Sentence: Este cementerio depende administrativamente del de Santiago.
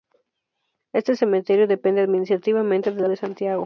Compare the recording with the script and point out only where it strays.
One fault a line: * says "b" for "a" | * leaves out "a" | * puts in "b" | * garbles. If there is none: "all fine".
all fine